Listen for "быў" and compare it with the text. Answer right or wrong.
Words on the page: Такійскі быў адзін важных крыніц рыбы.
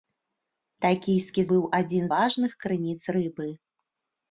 right